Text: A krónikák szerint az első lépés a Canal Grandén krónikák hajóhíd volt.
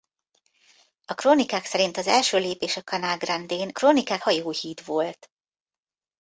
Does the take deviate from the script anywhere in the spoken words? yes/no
no